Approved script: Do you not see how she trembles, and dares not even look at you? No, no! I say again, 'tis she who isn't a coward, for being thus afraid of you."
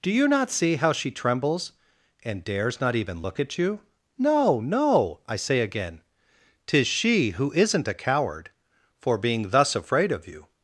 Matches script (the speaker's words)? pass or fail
pass